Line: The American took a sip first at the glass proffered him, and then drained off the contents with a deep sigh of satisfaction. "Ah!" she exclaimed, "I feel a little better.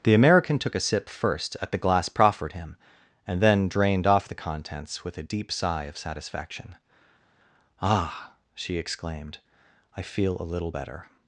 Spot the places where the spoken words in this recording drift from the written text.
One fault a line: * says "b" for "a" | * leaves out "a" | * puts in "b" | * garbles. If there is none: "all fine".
all fine